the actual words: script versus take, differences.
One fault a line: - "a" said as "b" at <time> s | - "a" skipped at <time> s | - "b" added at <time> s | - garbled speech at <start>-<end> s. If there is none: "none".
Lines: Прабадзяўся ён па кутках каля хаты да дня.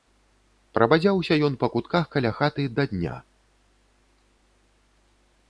none